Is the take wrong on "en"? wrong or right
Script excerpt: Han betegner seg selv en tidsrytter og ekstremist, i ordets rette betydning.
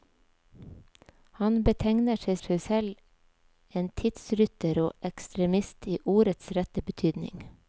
right